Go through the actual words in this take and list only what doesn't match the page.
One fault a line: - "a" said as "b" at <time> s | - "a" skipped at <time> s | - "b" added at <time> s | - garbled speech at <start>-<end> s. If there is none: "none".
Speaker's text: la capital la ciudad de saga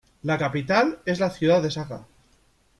- "es" added at 1.0 s